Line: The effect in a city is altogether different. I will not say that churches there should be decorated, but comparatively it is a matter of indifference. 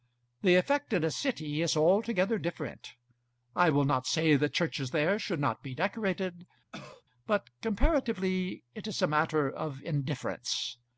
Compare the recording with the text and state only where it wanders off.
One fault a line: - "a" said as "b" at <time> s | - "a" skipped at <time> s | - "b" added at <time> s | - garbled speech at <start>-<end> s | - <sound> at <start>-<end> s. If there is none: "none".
- "not" added at 5.4 s
- cough at 6.7-7.0 s